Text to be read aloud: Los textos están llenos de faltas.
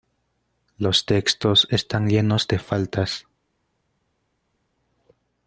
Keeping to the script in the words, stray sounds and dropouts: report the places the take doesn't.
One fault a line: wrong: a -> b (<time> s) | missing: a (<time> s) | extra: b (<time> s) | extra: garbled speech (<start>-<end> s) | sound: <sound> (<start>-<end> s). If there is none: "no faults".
no faults